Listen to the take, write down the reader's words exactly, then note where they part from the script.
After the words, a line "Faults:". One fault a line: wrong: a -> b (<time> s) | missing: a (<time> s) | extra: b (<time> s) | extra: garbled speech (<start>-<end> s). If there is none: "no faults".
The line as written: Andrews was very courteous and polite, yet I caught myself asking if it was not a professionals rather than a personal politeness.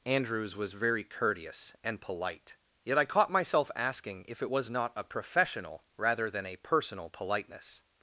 Andrews was very courteous and polite, yet I caught myself asking if it was not a professional rather than a personal politeness.
Faults:
wrong: professionals -> professional (5.0 s)